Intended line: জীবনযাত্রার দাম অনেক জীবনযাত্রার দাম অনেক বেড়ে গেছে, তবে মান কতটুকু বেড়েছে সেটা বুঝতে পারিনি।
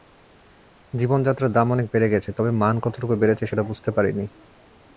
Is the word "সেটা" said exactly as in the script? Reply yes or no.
yes